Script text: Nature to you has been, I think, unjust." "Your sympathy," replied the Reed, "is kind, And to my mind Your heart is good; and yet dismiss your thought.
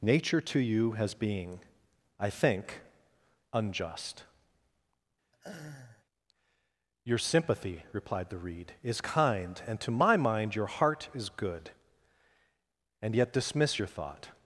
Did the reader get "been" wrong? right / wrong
wrong